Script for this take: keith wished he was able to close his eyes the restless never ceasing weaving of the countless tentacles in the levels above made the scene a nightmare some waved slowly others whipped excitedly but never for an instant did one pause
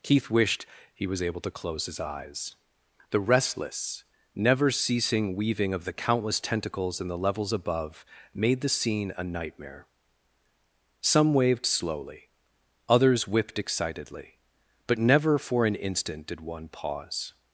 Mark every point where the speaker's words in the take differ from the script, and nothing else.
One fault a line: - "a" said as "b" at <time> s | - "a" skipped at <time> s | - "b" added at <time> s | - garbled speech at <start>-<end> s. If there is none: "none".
none